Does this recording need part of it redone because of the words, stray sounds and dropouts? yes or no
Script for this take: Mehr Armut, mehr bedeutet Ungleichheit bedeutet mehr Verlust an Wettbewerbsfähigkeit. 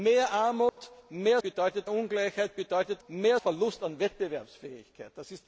yes